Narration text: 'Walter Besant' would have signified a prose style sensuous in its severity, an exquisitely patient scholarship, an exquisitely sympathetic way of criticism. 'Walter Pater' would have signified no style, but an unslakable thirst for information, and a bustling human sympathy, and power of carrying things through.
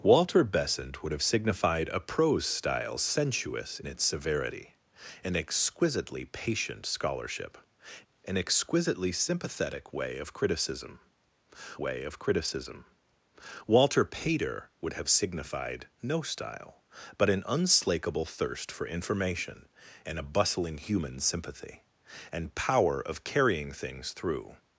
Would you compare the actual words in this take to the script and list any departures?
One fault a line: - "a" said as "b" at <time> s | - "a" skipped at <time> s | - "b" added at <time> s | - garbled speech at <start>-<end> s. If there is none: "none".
- "in" skipped at 3.8 s
- "way of criticism" added at 11.8 s